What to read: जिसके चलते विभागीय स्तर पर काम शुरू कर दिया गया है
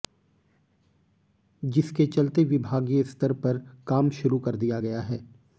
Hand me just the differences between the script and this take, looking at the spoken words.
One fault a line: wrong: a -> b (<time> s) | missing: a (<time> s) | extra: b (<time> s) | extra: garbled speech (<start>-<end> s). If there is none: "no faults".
no faults